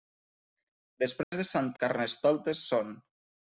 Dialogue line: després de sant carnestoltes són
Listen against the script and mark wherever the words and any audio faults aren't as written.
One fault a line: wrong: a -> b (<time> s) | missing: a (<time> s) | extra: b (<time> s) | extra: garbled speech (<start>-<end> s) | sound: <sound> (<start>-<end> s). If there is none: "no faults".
sound: dropout (1.2-1.3 s)